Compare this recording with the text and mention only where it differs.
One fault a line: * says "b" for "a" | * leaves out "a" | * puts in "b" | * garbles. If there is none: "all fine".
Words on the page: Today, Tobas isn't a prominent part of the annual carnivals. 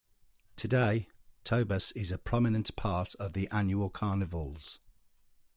* says "is" for "isn't"